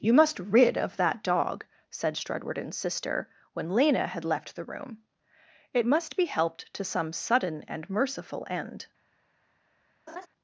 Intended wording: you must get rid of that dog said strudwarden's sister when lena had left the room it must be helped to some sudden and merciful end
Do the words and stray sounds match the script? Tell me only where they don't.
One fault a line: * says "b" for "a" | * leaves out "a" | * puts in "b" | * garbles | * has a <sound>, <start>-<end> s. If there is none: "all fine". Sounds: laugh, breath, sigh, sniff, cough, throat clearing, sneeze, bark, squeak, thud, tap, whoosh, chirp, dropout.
* leaves out "get"
* has a laugh, 10.1-10.3 s